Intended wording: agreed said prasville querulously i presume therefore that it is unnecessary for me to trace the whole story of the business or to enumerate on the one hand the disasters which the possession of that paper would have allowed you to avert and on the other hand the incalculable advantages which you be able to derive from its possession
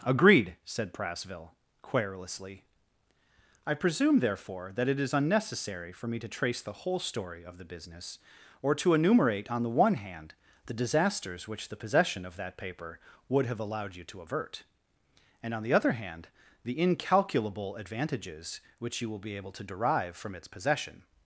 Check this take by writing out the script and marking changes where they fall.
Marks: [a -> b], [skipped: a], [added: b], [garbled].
agreed said prasville querulously i presume therefore that it is unnecessary for me to trace the whole story of the business or to enumerate on the one hand the disasters which the possession of that paper would have allowed you to avert and on the other hand the incalculable advantages which you [added: will] be able to derive from its possession